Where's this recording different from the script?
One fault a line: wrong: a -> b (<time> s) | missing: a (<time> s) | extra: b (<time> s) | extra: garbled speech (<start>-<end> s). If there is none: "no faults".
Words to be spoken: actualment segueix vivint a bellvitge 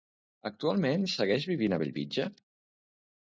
no faults